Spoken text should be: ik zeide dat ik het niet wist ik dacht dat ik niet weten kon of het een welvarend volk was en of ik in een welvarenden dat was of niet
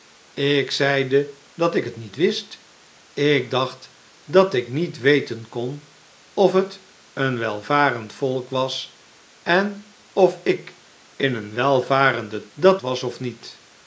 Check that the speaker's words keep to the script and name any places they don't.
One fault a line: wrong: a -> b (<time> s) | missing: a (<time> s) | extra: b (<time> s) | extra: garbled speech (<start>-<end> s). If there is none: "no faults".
no faults